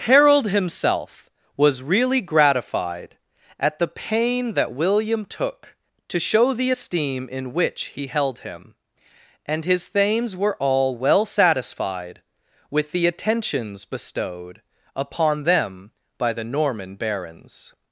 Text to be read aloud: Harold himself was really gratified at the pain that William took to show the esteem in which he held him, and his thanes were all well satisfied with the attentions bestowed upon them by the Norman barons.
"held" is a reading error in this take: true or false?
false